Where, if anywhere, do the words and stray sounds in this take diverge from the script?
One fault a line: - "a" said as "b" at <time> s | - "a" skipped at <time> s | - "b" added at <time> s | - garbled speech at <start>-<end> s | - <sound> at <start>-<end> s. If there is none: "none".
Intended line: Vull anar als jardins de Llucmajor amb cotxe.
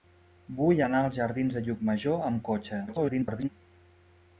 - garbled speech at 2.9-3.5 s